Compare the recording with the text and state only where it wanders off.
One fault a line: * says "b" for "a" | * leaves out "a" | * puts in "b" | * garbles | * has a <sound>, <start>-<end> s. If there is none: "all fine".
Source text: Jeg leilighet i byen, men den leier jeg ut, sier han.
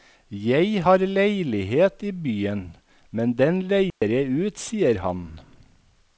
* puts in "har"
* has a dropout, 3.9-4.0 s